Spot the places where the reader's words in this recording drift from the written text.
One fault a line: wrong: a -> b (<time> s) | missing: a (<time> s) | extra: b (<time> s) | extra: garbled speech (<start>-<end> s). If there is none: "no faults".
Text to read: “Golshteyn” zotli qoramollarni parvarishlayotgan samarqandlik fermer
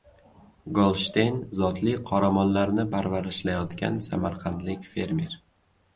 no faults